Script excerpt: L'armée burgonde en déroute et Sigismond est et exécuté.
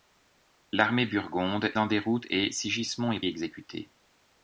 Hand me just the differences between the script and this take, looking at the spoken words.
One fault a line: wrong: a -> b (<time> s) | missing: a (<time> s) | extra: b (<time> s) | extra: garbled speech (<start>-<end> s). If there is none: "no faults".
no faults